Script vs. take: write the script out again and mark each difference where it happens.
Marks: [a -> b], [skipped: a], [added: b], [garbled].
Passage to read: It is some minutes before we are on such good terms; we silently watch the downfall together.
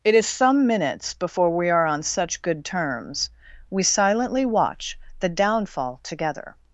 It is some minutes before we are on such good terms; we silently watch the downfall together.